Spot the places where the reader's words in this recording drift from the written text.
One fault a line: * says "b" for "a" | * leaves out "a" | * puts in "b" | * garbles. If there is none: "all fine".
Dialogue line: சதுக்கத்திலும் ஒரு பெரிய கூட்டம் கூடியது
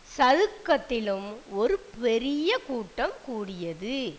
all fine